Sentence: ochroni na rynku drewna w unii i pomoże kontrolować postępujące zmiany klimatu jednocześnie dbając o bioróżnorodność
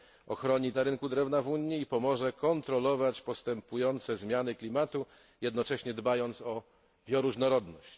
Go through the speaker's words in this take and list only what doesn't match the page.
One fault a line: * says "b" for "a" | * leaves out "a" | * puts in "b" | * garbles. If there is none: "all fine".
all fine